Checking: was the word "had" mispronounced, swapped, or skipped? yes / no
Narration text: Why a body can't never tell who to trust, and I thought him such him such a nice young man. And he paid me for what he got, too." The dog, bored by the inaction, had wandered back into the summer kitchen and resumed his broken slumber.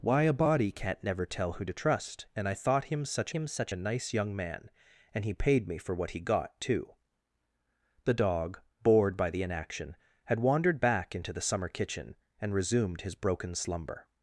no